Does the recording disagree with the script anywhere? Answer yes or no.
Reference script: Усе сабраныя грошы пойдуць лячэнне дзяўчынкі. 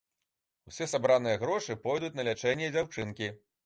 yes